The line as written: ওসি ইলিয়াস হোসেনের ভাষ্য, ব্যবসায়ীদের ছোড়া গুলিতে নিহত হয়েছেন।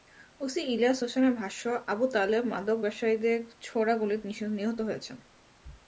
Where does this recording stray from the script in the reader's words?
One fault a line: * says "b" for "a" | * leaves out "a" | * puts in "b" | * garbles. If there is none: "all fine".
* puts in "আবু তালেব মাদক"